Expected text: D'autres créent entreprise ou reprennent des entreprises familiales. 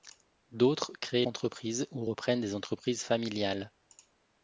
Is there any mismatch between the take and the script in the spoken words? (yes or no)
no